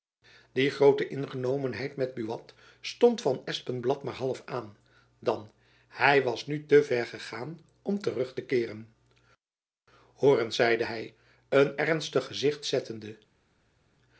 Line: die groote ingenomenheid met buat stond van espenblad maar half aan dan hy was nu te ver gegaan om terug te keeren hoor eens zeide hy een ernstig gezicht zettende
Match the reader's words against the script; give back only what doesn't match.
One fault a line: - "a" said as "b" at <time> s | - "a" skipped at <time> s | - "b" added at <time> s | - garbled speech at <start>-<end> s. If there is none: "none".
none